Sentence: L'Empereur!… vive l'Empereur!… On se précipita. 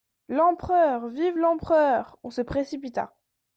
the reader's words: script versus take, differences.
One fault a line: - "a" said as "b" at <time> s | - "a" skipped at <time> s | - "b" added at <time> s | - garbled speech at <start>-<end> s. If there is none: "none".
none